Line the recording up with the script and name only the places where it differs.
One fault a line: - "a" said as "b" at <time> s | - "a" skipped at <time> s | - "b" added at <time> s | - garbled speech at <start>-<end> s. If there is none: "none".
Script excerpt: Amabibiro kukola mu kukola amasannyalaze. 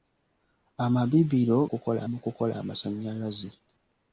none